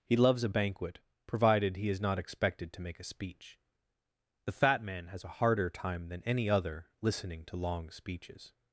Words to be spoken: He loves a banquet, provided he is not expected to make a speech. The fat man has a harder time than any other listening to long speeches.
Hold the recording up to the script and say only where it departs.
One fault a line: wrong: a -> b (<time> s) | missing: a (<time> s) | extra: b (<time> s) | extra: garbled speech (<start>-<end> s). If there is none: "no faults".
no faults